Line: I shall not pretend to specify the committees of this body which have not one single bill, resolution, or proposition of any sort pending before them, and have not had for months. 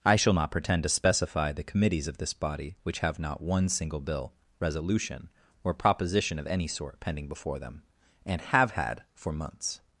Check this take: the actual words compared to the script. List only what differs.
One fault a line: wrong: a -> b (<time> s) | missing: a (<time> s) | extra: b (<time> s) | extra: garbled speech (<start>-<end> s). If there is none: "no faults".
missing: not (8.7 s)